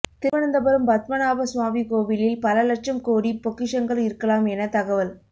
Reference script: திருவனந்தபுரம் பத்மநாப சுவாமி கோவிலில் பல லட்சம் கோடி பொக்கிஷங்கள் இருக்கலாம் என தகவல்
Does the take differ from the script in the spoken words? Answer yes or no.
no